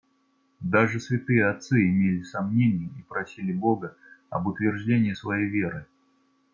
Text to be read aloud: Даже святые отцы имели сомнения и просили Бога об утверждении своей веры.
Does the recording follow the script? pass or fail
pass